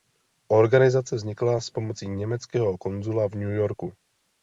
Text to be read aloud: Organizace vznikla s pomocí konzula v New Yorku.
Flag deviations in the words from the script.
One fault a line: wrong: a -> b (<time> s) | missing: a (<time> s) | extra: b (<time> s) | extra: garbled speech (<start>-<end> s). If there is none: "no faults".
extra: německého (2.1 s)